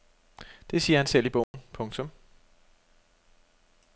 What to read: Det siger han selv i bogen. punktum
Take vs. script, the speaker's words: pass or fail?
pass